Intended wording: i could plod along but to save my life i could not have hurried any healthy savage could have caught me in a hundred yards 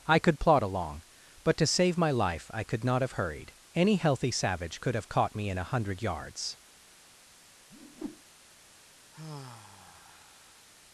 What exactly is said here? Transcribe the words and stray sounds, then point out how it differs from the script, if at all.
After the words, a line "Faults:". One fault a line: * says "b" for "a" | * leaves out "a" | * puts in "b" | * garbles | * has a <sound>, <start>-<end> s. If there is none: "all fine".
i could plod along but to save my life i could not have hurried any healthy savage could have caught me in a hundred yards
Faults:
* has a whoosh, 7.7-8.2 s
* has a sigh, 9.1-10.7 s